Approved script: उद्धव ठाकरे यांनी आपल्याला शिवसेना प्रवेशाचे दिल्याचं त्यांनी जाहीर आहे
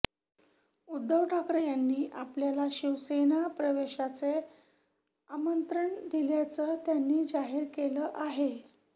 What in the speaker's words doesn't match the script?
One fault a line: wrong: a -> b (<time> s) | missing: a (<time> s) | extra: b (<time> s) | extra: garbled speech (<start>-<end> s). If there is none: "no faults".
extra: आमंत्रण (5.3 s)
extra: केलं (7.7 s)